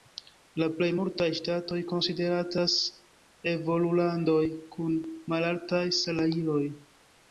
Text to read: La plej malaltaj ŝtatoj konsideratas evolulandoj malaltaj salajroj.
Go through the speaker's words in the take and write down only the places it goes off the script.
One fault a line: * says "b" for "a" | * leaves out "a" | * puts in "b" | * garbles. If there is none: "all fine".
* says "multaj" for "malaltaj"
* puts in "kun"